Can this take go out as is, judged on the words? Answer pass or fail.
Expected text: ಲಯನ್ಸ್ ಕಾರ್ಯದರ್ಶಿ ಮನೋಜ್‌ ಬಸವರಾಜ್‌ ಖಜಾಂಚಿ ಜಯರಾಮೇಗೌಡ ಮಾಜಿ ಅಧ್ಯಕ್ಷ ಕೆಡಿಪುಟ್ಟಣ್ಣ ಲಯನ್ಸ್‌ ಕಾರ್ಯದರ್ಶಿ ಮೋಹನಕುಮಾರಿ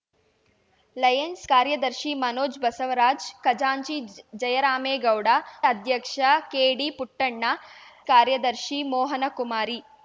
fail